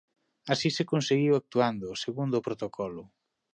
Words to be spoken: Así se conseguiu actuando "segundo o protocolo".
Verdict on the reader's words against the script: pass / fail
pass